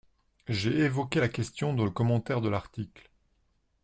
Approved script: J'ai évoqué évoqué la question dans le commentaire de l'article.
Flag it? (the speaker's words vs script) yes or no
yes